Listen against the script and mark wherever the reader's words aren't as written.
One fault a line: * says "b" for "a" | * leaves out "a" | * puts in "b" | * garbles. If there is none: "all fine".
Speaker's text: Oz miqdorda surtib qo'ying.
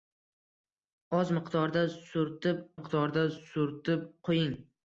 * puts in "miqdorda surtib"